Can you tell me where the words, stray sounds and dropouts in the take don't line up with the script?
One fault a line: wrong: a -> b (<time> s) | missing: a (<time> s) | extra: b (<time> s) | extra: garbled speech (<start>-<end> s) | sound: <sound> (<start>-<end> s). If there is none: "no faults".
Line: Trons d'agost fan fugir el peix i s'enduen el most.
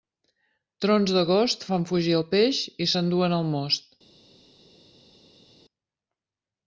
no faults